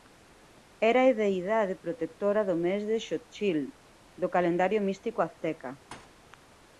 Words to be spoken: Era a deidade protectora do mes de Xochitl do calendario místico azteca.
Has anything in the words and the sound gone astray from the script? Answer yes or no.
yes